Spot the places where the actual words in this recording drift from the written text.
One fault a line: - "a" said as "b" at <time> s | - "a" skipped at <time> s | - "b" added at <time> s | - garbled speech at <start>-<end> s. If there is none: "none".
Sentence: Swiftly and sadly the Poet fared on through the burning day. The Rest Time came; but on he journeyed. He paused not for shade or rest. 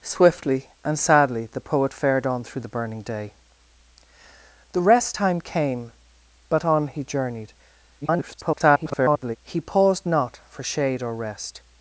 - garbled speech at 8.0-9.4 s